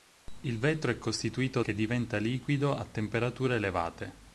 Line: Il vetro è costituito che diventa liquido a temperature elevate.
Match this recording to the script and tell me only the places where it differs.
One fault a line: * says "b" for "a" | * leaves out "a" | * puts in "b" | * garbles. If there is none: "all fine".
all fine